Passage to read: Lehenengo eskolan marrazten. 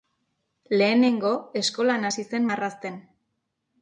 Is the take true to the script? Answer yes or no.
no